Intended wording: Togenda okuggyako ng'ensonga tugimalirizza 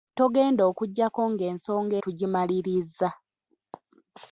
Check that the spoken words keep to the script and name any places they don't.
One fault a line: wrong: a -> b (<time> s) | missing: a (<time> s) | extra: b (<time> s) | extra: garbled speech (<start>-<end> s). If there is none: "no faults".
no faults